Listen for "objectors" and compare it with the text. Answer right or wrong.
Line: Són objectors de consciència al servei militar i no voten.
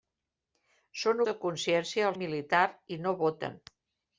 wrong